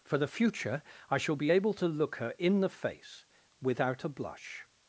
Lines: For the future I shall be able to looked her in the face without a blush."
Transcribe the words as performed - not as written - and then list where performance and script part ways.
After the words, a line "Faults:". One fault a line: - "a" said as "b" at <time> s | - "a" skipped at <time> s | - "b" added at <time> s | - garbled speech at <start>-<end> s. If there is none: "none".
For the future I shall be able to look her in the face without a blush."
Faults:
- "looked" said as "look" at 1.9 s